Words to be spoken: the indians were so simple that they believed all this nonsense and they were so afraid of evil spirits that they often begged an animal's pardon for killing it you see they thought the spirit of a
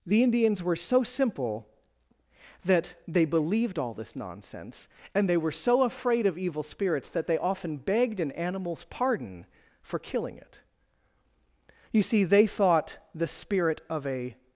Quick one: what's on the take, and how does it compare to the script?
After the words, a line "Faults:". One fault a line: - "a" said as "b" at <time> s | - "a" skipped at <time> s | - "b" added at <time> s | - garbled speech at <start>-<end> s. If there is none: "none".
the indians were so simple that they believed all this nonsense and they were so afraid of evil spirits that they often begged an animal's pardon for killing it you see they thought the spirit of a
Faults:
none